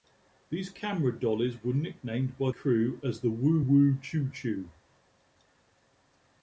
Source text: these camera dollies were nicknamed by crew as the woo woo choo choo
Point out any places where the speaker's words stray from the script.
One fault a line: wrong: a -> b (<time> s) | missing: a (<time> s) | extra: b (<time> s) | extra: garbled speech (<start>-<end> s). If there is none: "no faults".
no faults